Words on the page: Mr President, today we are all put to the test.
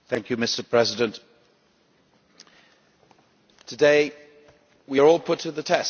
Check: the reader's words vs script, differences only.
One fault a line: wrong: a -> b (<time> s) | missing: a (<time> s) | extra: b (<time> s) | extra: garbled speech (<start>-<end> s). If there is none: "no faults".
no faults